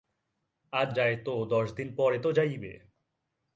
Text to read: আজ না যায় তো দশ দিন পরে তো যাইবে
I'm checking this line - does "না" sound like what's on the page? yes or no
no